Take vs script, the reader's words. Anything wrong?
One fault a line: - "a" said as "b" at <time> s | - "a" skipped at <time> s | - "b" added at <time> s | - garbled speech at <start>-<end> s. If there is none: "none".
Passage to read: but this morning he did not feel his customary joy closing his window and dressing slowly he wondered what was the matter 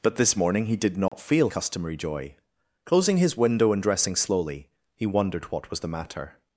- "his" skipped at 1.5 s